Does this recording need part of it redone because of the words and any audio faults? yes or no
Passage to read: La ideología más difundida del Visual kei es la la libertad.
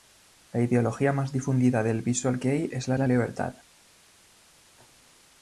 no